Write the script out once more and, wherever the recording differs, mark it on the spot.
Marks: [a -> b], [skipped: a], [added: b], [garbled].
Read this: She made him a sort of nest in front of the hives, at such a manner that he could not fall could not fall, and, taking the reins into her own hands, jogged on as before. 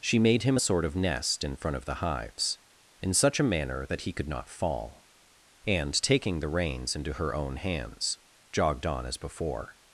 She made him a sort of nest in front of the hives, [at -> in] such a manner that he could not fall [skipped: could not fall,] and, taking the reins into her own hands, jogged on as before.